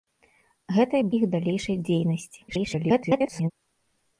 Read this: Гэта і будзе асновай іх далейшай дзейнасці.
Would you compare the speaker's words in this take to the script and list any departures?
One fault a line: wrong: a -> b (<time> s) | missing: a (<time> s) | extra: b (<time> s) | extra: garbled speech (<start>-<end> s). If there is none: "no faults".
missing: будзе асновай (1.0 s)
extra: garbled speech (2.5-3.5 s)